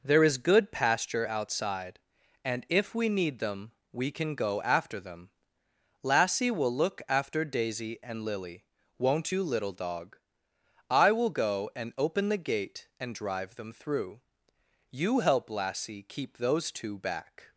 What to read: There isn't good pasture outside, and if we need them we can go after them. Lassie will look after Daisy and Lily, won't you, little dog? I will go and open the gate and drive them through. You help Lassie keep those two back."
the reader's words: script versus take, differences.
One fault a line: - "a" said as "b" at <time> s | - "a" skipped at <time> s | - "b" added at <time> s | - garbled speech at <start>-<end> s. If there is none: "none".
- "isn't" said as "is" at 0.2 s